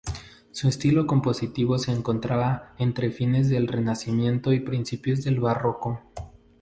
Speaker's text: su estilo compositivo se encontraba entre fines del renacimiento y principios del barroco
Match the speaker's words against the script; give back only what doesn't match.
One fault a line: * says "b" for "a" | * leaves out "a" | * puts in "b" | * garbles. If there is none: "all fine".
all fine